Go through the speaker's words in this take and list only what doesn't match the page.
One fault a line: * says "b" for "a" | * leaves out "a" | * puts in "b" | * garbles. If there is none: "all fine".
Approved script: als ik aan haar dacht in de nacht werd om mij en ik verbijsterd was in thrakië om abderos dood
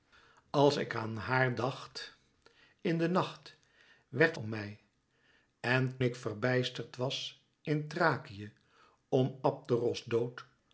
all fine